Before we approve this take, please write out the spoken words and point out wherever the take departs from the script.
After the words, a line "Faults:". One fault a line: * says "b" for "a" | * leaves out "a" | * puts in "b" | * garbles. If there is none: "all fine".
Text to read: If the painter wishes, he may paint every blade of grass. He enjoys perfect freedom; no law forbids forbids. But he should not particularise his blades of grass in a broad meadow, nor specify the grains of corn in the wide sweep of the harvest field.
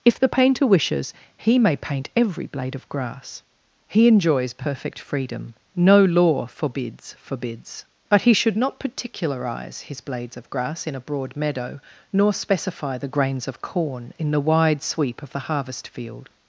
If the painter wishes, he may paint every blade of grass. He enjoys perfect freedom; no law forbids forbids. But he should not particularise his blades of grass in a broad meadow, nor specify the grains of corn in the wide sweep of the harvest field.
Faults:
all fine